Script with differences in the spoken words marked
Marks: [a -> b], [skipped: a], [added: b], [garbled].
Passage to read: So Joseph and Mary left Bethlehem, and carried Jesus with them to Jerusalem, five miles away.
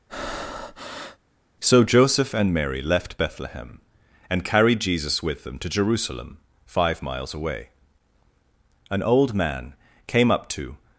So Joseph and Mary left Bethlehem, and carried Jesus with them to Jerusalem, five miles away. [added: An old man came up to]